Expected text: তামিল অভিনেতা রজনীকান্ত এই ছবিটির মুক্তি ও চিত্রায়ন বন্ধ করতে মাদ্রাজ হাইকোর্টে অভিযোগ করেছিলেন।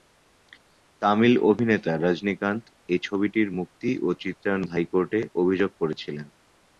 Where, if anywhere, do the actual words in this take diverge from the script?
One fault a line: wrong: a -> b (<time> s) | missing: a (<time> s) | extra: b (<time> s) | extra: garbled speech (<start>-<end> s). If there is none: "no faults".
missing: বন্ধ করতে মাদ্রাজ (4.6 s)